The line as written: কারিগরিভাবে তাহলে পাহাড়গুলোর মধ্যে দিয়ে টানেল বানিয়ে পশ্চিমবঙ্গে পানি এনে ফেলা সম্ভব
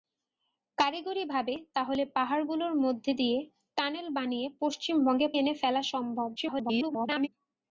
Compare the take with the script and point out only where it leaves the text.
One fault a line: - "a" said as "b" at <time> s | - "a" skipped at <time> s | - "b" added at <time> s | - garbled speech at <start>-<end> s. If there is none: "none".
- "পানি" skipped at 5.3 s
- garbled speech at 6.4-7.3 s